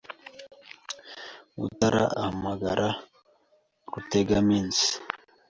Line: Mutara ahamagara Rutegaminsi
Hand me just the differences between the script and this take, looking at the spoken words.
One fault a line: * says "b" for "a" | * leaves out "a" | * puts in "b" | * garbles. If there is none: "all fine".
all fine